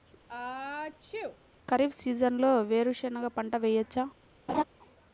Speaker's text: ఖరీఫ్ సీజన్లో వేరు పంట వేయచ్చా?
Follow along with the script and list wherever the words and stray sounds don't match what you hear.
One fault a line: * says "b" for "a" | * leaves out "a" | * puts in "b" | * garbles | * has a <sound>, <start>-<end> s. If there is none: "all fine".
* has a sneeze, 0.3-1.4 s
* puts in "శెనగ"
* has a laugh, 4.5-4.6 s